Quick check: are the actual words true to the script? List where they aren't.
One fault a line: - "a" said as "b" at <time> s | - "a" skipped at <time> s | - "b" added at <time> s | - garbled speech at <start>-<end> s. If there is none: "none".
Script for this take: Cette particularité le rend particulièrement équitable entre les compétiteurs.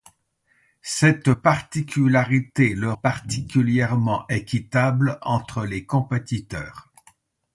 - "rend" skipped at 2.9 s